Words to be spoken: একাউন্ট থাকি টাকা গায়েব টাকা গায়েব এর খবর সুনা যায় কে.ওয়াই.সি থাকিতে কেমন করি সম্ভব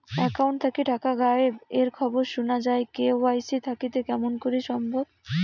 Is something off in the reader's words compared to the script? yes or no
yes